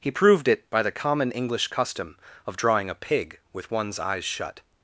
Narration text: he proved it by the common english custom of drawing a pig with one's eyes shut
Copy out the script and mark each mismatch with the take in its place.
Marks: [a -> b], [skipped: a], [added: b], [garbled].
he proved it by the common english custom of drawing a pig with one's eyes shut